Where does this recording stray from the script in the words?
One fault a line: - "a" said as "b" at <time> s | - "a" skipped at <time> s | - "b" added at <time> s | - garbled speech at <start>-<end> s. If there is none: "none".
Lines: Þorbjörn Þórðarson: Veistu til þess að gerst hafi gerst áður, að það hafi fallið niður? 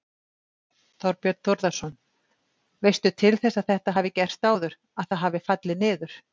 - "gerst" said as "þetta" at 3.8 s